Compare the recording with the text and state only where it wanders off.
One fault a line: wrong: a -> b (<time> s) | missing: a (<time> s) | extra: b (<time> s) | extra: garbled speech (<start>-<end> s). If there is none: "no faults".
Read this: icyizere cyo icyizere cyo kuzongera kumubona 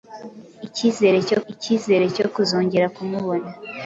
no faults